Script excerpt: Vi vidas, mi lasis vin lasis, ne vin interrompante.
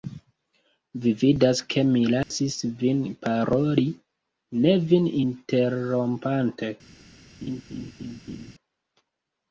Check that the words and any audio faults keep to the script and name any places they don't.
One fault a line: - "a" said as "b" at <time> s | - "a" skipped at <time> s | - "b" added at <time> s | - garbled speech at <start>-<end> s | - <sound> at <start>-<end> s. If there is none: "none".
- "ke" added at 1.7 s
- dropout at 2.2-2.3 s
- "lasis" said as "paroli" at 3.3 s
- laugh at 7.4-8.5 s